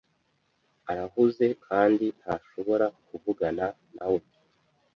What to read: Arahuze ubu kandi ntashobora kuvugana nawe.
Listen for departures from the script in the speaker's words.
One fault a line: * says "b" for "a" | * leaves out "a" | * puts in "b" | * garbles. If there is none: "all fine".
* leaves out "ubu"